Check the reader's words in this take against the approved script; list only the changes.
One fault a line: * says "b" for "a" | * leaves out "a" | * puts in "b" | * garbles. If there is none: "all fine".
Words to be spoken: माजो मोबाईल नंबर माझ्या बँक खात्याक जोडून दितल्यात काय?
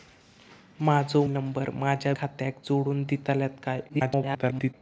* leaves out "मोबाईल"
* leaves out "बँक"
* garbles